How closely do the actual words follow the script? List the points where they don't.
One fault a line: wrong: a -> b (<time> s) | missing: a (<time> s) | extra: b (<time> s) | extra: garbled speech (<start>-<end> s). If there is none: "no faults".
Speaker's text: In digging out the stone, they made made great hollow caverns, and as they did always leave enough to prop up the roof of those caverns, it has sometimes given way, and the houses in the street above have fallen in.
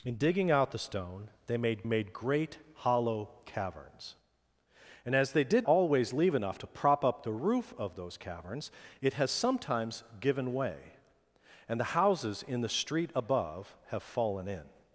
no faults